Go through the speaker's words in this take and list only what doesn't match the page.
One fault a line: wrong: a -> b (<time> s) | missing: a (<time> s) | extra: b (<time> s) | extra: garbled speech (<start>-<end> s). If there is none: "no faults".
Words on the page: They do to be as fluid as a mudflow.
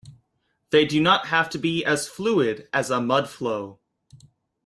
extra: not have (1.0 s)